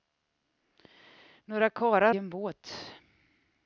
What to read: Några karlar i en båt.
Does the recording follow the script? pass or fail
pass